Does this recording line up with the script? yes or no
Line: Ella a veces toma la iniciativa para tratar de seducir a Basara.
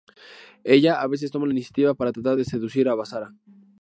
yes